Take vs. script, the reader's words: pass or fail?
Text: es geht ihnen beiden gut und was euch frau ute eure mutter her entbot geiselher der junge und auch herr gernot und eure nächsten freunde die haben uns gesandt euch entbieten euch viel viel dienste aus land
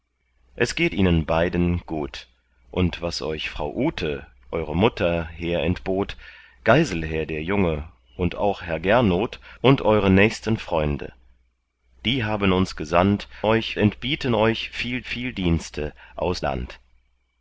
pass